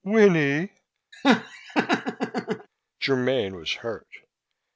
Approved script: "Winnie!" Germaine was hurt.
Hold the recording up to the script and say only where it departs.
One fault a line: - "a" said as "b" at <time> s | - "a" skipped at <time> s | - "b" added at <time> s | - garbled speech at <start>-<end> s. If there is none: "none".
none